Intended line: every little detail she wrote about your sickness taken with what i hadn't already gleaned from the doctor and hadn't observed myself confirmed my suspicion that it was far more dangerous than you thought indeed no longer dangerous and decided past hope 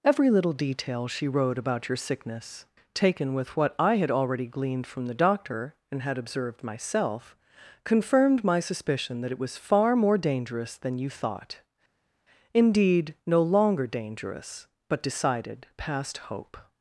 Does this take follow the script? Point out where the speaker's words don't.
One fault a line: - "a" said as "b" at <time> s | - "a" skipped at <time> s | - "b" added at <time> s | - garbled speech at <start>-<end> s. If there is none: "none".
- "hadn't" said as "had" at 4.0 s
- "hadn't" said as "had" at 6.0 s
- "and" said as "but" at 14.9 s